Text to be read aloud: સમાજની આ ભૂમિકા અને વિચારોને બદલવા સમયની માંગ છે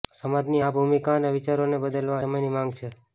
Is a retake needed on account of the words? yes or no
no